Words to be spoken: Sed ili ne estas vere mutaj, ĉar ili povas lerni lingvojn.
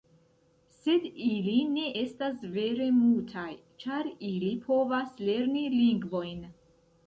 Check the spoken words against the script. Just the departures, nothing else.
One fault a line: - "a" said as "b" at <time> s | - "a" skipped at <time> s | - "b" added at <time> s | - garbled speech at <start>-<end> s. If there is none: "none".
none